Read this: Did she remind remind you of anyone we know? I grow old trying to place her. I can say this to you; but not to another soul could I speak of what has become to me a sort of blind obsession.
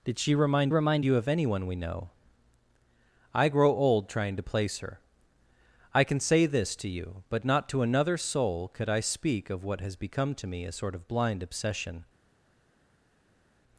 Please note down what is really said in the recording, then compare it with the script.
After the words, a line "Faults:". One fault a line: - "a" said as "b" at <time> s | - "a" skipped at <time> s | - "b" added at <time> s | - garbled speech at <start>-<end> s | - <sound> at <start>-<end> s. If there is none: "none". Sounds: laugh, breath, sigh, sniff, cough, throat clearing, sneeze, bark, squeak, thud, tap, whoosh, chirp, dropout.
Did she remind remind you of anyone we know? I grow old trying to place her. I can say this to you; but not to another soul could I speak of what has become to me a sort of blind obsession.
Faults:
none